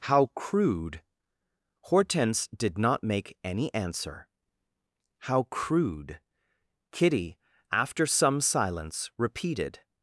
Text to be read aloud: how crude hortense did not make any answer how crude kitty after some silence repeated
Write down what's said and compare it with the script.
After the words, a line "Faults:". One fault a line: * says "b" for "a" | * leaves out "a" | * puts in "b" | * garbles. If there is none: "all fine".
how crude hortense did not make any answer how crude kitty after some silence repeated
Faults:
all fine